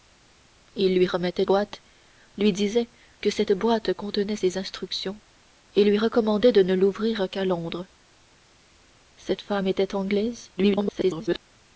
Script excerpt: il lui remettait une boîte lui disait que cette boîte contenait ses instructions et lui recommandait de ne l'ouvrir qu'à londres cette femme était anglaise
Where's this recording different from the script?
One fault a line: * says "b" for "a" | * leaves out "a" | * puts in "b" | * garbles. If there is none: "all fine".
* leaves out "une"
* garbles